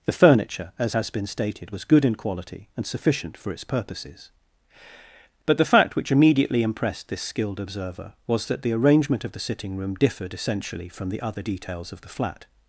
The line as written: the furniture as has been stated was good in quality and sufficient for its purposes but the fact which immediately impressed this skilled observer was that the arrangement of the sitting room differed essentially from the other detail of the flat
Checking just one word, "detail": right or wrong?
wrong